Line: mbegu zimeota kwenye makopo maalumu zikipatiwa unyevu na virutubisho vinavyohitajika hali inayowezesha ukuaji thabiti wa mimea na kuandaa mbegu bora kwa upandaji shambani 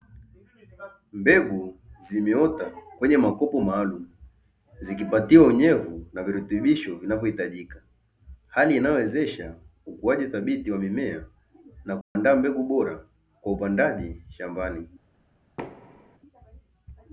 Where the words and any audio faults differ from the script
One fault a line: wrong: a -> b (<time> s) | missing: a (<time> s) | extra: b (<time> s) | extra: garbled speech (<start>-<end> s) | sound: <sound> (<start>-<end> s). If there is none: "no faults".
sound: dropout (12.0-12.2 s)
sound: thud (15.6-16.2 s)